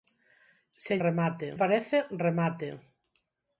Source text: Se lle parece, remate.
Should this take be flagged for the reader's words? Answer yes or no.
yes